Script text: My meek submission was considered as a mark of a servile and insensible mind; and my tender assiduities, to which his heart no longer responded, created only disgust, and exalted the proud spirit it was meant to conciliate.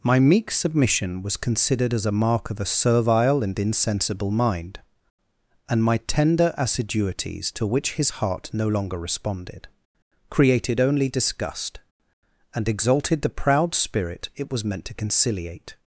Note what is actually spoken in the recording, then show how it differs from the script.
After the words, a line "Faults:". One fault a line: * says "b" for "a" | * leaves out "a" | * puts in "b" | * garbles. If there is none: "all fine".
My meek submission was considered as a mark of a servile and insensible mind; and my tender assiduities, to which his heart no longer responded, created only disgust, and exalted the proud spirit it was meant to conciliate.
Faults:
all fine